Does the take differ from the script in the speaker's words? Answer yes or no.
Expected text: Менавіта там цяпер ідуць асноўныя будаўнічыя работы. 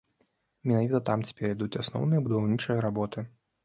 no